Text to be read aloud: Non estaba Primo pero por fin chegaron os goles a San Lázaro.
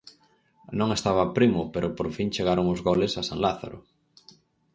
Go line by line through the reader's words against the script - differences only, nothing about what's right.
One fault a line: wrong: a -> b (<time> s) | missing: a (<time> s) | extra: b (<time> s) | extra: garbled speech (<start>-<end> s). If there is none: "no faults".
no faults